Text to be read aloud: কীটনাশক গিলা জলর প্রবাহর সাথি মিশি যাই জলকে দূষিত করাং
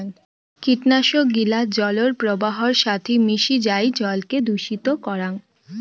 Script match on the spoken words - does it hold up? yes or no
yes